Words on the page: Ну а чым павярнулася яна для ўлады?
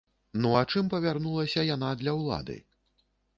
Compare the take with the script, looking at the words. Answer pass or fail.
pass